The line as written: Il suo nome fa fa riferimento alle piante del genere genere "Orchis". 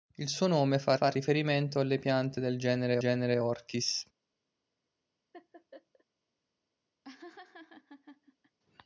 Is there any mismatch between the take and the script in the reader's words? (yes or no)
no